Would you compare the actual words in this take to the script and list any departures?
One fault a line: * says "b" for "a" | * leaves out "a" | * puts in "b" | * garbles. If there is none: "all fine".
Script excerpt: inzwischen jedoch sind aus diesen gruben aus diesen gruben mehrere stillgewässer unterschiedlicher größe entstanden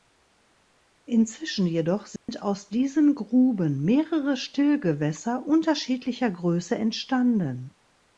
* leaves out "aus diesen gruben"